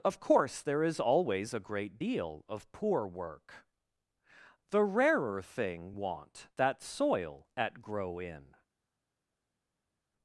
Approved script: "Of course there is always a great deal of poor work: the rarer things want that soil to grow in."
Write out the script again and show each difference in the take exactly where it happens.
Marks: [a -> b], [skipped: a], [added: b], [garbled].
"Of course there is always a great deal of poor work: the rarer [things -> thing] want that soil [to -> at] grow in."